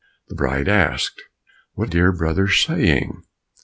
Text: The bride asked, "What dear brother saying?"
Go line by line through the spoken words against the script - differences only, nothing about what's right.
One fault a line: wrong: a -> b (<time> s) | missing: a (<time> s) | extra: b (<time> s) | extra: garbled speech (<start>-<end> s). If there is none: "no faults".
no faults